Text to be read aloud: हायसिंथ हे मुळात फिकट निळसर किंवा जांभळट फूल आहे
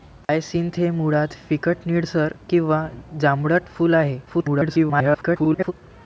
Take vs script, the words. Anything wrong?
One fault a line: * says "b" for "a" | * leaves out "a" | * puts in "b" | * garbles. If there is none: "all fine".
* garbles